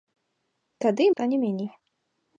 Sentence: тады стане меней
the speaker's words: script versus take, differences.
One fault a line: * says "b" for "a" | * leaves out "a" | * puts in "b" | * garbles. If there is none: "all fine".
all fine